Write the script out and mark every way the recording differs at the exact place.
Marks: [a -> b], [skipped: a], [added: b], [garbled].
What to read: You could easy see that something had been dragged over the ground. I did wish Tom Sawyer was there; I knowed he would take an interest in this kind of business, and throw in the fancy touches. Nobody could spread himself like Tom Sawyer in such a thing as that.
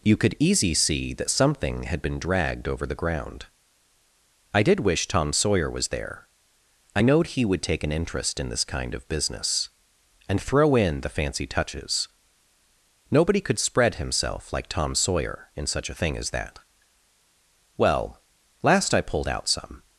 You could easy see that something had been dragged over the ground. I did wish Tom Sawyer was there; I knowed he would take an interest in this kind of business, and throw in the fancy touches. Nobody could spread himself like Tom Sawyer in such a thing as that. [added: Well last I pulled out some]